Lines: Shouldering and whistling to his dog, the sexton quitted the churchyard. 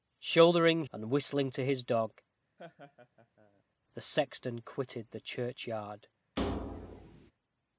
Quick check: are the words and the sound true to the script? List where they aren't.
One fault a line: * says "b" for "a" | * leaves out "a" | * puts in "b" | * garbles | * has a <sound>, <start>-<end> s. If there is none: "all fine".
* has a laugh, 2.6-3.6 s
* has a thud, 6.4-7.3 s